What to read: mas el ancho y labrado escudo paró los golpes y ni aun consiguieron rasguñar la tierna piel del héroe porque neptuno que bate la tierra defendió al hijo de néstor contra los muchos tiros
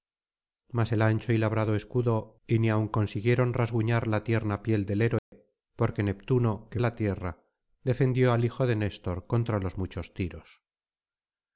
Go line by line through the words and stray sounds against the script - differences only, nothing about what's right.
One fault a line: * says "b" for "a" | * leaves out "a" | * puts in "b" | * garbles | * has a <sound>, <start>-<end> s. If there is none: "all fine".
* leaves out "paró los golpes"
* has a dropout, 5.2-5.3 s
* leaves out "bate"